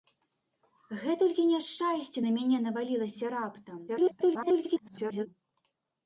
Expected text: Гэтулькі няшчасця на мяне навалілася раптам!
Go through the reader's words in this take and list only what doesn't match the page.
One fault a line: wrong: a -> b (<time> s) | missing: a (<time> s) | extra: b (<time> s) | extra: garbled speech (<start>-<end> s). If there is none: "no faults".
extra: garbled speech (3.9-5.3 s)